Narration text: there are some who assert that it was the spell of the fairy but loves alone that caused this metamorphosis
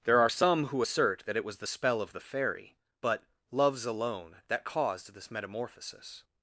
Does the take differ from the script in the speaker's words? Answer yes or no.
no